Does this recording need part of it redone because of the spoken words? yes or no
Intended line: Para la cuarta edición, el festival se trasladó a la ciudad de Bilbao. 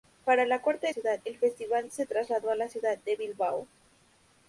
yes